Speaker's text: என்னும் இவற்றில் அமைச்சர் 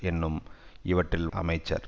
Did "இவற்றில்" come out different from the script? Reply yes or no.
no